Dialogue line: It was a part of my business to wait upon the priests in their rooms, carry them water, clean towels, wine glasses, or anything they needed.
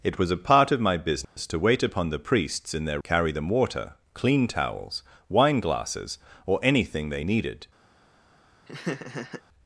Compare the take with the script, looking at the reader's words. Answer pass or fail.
fail